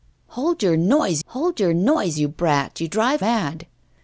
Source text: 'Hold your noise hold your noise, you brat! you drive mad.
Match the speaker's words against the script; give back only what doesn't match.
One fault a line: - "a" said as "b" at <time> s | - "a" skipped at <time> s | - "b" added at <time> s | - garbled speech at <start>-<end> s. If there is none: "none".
none